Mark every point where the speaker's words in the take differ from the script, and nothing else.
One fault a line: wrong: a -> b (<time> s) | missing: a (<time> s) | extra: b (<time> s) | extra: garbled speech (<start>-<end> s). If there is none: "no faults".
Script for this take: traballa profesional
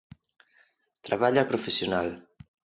no faults